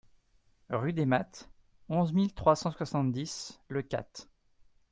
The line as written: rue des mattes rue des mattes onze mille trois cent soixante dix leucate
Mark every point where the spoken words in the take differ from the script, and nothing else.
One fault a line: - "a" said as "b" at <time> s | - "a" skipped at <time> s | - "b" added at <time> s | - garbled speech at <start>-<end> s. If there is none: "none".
- "rue des mattes" skipped at 1.5 s